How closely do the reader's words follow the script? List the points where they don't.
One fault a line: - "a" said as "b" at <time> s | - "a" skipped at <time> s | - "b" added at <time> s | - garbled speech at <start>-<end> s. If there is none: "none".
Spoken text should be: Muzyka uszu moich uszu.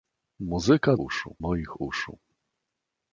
none